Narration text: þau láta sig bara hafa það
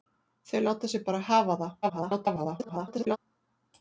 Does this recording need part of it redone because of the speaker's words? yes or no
yes